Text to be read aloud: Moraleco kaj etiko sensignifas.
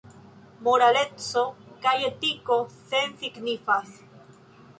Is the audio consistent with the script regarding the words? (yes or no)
yes